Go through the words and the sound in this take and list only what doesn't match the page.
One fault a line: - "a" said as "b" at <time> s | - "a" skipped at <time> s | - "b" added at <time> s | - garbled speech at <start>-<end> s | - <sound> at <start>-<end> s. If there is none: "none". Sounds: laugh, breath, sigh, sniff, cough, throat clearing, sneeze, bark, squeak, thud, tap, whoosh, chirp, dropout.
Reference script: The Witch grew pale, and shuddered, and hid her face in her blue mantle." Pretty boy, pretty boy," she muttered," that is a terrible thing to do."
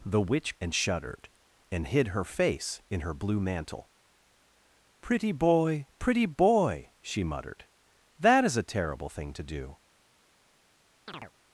- "grew pale" skipped at 0.6 s
- chirp at 11.1-11.3 s